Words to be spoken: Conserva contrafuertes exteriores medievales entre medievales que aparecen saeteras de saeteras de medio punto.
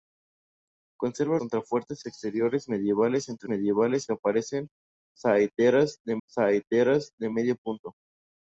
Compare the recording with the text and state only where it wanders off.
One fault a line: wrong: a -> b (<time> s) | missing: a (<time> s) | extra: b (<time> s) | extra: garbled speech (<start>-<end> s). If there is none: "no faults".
no faults